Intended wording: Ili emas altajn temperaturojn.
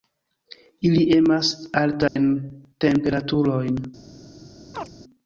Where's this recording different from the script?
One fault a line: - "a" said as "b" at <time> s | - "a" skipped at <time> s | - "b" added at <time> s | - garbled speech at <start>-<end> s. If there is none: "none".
none